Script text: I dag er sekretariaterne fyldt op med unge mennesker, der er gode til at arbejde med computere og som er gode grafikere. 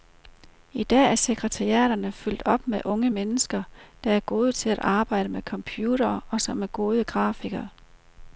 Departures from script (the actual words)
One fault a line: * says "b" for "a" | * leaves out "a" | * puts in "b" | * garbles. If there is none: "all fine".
all fine